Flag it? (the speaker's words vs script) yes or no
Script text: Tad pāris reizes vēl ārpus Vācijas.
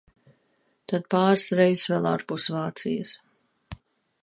no